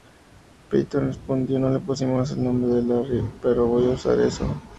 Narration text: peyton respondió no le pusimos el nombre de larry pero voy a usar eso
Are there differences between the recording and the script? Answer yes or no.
no